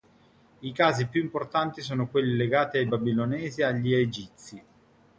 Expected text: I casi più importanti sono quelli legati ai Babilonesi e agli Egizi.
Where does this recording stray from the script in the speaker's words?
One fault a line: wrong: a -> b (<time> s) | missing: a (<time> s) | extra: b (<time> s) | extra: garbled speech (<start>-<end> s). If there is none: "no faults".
no faults